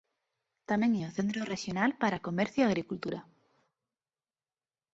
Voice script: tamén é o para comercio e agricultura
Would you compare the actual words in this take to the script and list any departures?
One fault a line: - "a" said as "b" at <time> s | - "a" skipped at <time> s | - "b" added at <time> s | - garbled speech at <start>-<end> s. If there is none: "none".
- "centro rexional" added at 1.2 s